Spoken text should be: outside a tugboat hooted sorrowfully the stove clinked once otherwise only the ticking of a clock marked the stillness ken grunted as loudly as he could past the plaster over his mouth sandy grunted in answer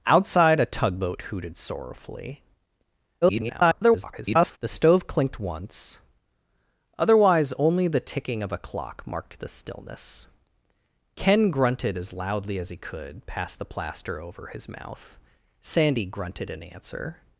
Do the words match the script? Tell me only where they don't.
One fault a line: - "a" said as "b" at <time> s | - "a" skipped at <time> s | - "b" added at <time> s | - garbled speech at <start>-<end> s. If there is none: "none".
- garbled speech at 3.2-4.6 s